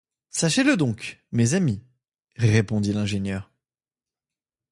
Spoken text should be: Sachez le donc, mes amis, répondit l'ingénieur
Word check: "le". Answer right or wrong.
right